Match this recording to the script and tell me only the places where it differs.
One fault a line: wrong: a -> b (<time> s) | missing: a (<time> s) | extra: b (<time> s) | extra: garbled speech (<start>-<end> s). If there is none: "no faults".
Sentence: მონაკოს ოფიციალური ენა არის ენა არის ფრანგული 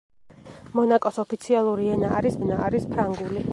no faults